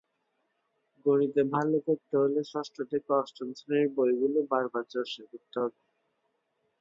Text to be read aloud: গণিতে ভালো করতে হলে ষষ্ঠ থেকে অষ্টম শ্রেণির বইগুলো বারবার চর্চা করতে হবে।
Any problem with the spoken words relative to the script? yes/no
no